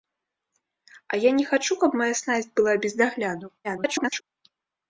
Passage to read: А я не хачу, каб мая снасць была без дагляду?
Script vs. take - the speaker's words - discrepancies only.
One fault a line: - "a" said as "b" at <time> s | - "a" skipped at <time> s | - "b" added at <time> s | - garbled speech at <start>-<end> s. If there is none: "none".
- garbled speech at 3.6-4.2 s